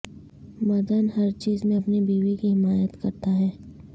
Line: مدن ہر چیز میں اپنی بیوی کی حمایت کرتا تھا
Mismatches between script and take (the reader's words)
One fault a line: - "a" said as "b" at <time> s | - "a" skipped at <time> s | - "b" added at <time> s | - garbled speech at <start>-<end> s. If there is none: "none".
- "تھا" said as "ہے" at 3.4 s